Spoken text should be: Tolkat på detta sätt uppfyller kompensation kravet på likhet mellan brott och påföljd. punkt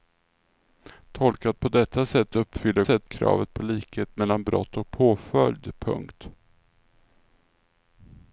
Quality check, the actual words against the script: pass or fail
fail